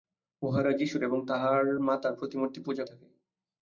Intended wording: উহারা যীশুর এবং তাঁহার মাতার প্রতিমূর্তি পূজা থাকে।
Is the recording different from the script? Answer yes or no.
no